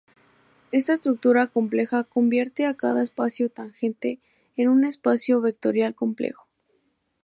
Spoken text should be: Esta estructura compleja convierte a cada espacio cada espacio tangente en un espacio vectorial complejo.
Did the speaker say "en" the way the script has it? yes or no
yes